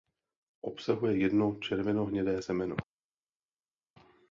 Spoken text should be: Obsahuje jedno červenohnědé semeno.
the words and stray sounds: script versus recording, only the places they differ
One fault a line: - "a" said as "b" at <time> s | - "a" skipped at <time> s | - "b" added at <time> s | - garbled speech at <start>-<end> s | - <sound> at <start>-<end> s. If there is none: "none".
none